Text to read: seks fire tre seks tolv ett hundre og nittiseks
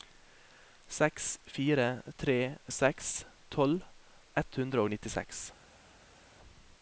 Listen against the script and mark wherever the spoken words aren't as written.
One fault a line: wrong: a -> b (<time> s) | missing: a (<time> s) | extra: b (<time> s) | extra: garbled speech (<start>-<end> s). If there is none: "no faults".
no faults